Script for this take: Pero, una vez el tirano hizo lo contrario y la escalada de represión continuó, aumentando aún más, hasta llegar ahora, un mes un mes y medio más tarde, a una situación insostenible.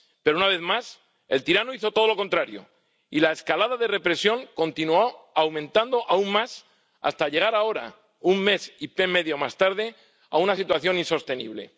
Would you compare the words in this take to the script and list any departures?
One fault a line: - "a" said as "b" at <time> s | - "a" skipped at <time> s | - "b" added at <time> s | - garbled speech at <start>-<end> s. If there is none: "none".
- "más" added at 0.6 s
- "todo" added at 1.9 s
- "un mes" skipped at 8.7 s